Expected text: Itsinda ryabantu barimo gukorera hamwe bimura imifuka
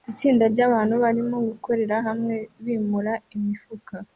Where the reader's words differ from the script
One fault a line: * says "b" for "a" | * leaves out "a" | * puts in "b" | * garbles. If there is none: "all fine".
all fine